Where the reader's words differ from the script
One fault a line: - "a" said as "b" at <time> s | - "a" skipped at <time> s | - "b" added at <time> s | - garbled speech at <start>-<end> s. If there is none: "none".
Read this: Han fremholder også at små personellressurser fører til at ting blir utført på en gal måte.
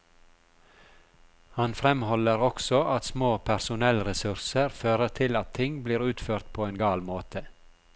none